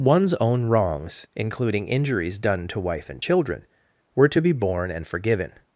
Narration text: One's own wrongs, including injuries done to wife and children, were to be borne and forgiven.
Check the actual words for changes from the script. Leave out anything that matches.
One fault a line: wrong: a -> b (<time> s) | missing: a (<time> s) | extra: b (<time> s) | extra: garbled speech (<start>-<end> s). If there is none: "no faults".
no faults